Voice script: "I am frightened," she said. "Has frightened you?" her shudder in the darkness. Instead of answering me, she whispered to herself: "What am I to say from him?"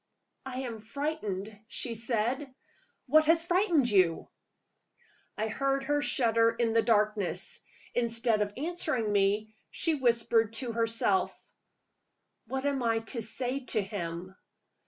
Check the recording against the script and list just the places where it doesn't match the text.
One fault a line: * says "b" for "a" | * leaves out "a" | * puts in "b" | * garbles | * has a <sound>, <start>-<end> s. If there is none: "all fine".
* puts in "What"
* puts in "I heard"
* says "to" for "from"